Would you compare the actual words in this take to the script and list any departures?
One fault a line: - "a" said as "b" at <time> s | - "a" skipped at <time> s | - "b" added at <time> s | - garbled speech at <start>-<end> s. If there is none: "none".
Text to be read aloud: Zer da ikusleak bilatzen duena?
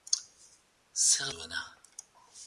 - "da ikusleak bilatzen" skipped at 1.3 s